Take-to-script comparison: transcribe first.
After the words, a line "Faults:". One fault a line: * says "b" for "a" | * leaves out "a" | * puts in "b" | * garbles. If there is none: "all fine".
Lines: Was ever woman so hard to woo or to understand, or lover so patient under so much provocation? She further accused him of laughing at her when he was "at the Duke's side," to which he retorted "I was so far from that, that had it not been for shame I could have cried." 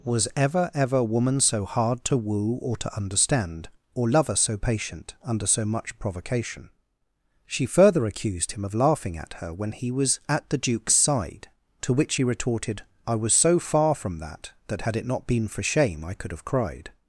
Was ever ever woman so hard to woo or to understand, or lover so patient under so much provocation? She further accused him of laughing at her when he was "at the Duke's side," to which he retorted "I was so far from that, that had it not been for shame I could have cried."
Faults:
* puts in "ever"